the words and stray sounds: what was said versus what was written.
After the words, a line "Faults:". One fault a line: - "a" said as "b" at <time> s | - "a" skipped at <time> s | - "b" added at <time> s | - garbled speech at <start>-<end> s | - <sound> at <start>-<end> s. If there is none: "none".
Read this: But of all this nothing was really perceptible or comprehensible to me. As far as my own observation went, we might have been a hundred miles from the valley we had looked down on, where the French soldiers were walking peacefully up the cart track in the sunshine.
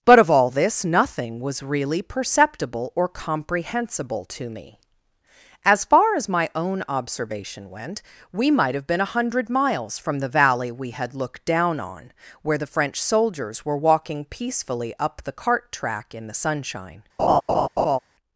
But of all this nothing was really perceptible or comprehensible to me. As far as my own observation went, we might have been a hundred miles from the valley we had looked down on, where the French soldiers were walking peacefully up the cart track in the sunshine.
Faults:
- laugh at 17.2-18.0 s